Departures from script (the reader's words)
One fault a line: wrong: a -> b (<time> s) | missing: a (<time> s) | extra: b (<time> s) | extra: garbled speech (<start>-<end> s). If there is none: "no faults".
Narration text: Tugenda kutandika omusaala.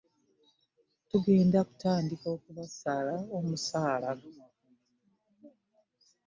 extra: okubasala (2.4 s)